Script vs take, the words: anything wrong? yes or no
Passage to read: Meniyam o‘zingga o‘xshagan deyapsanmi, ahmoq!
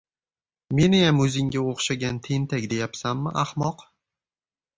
yes